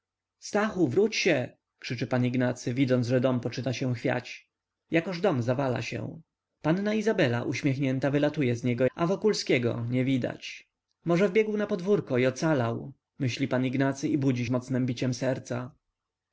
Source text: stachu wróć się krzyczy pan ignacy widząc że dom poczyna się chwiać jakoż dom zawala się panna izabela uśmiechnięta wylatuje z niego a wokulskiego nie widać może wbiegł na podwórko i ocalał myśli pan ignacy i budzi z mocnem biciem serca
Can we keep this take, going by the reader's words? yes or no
yes